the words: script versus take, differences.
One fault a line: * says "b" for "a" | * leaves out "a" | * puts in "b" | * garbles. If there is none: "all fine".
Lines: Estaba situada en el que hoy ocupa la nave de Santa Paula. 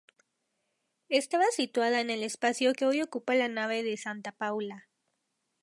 * puts in "espacio"